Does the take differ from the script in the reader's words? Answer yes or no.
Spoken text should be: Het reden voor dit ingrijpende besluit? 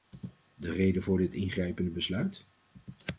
yes